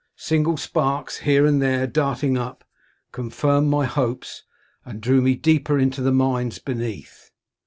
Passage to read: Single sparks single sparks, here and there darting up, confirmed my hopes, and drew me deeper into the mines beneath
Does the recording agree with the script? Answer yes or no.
no